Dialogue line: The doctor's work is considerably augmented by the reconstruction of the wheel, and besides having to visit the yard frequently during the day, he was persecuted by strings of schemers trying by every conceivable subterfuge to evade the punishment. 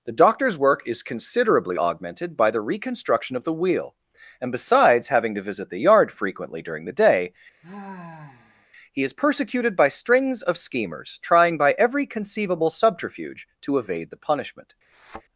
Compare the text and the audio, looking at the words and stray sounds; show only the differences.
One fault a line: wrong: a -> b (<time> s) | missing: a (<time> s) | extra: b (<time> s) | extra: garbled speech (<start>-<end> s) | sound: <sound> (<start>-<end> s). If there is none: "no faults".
sound: sigh (7.6-8.7 s)
wrong: was -> is (9.0 s)
sound: thud (14.9-15.2 s)